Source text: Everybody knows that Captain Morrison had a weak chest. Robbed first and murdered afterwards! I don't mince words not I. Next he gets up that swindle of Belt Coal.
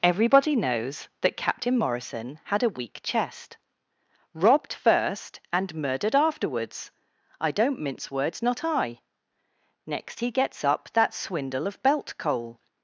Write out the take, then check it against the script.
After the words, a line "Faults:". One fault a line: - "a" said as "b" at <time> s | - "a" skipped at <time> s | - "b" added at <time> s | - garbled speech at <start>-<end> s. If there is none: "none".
Everybody knows that Captain Morrison had a weak chest. Robbed first and murdered afterwards! I don't mince words not I. Next he gets up that swindle of Belt Coal.
Faults:
none